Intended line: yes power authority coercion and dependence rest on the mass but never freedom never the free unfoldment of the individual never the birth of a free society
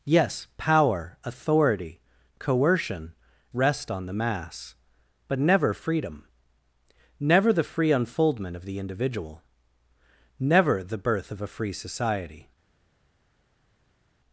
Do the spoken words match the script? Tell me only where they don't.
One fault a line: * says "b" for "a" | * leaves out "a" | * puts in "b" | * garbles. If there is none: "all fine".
* leaves out "and dependence"